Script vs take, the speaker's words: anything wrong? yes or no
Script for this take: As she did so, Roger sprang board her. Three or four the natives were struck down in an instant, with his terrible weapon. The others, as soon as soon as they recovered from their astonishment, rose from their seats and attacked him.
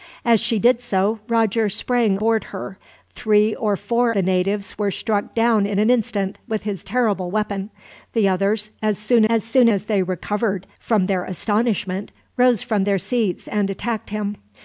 no